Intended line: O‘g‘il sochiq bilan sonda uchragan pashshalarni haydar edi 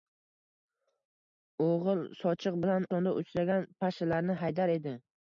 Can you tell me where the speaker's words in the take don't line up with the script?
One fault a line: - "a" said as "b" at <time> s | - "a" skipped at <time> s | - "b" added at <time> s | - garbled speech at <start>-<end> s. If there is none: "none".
none